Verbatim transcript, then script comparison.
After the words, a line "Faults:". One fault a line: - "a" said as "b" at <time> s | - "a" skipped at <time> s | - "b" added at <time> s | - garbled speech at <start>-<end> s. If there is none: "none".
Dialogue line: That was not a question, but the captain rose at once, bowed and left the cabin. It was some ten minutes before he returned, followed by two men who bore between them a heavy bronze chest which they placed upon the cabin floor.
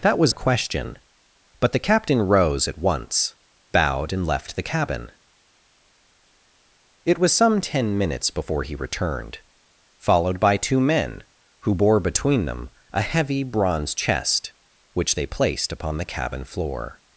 That was a question, but the captain rose at once, bowed and left the cabin. It was some ten minutes before he returned, followed by two men who bore between them a heavy bronze chest which they placed upon the cabin floor.
Faults:
- "not" skipped at 0.3 s